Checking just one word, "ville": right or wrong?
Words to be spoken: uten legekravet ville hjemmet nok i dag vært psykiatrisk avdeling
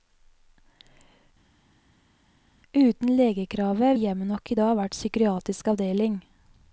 wrong